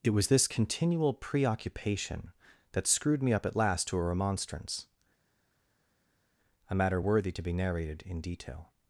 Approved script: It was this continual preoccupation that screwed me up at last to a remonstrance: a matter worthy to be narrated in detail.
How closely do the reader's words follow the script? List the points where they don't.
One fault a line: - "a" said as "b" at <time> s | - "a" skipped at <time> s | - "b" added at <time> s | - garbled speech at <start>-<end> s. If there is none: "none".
none